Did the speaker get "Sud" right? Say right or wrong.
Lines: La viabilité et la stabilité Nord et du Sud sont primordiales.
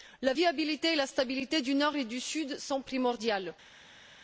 right